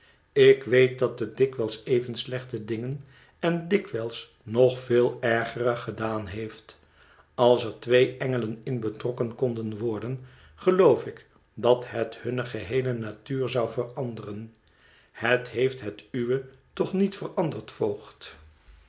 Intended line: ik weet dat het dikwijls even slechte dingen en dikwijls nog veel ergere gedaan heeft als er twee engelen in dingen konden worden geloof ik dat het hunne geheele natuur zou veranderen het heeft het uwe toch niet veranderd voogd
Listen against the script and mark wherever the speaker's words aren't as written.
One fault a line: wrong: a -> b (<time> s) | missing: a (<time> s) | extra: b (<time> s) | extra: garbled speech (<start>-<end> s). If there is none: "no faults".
wrong: dingen -> betrokken (8.8 s)